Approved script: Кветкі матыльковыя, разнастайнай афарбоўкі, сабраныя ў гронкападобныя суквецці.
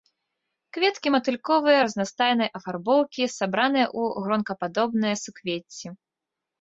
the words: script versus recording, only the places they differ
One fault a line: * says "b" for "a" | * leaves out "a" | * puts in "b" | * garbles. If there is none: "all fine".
all fine